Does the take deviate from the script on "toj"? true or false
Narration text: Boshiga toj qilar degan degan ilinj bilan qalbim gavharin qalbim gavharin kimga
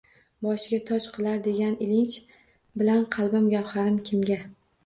false